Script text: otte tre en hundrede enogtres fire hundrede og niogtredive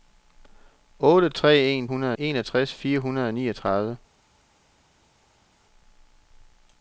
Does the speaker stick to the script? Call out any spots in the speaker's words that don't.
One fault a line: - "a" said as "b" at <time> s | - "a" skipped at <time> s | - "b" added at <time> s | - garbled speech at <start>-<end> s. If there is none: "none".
none